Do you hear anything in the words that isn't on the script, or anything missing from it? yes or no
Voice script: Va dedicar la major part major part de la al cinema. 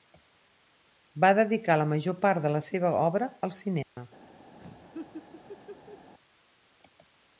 yes